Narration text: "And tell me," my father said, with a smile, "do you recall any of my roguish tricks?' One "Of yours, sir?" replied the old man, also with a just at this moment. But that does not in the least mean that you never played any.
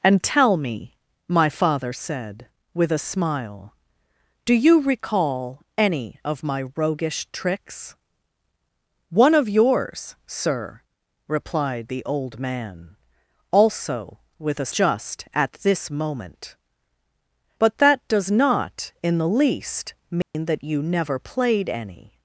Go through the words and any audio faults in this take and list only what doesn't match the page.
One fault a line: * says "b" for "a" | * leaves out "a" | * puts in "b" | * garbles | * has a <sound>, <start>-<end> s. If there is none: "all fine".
* has a dropout, 20.2-20.3 s